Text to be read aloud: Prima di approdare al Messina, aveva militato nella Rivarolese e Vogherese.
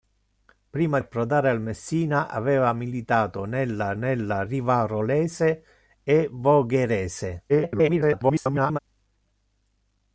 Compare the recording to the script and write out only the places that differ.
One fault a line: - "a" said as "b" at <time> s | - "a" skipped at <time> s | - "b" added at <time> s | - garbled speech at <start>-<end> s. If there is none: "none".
- "di" skipped at 1.0 s
- "nella" added at 3.9 s
- garbled speech at 7.5-8.8 s